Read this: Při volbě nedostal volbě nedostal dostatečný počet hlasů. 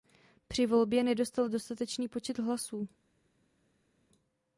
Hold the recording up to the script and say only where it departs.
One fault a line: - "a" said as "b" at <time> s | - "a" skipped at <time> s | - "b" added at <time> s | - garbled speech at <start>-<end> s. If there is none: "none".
- "volbě nedostal" skipped at 1.5 s